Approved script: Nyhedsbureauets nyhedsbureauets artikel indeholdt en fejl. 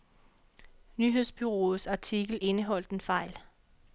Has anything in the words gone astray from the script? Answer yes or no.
yes